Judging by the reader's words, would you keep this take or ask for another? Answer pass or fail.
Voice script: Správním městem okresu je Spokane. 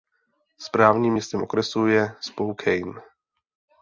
pass